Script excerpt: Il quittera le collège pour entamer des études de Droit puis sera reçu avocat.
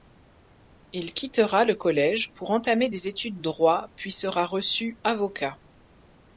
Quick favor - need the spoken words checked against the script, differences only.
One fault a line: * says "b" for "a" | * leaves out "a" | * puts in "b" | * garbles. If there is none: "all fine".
* leaves out "de"